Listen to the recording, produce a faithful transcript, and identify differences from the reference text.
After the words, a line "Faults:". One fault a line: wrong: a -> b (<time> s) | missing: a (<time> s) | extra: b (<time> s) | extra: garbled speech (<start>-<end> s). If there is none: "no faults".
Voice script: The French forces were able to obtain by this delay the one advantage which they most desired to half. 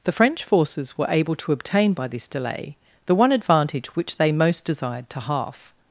The French forces were able to obtain by this delay the one advantage which they most desired to half.
Faults:
no faults